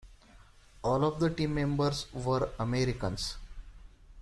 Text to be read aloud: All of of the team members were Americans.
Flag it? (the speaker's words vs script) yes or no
yes